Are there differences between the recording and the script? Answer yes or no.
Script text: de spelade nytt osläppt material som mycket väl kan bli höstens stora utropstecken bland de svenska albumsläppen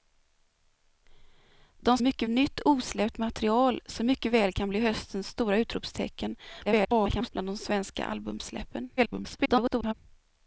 yes